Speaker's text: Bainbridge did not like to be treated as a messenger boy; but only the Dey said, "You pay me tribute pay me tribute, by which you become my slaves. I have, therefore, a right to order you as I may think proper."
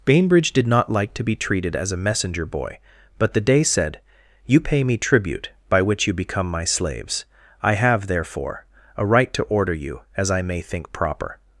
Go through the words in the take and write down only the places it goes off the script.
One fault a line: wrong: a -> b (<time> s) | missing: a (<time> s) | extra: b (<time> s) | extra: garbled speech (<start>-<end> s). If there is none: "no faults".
missing: only (3.3 s)
missing: pay me tribute (5.5 s)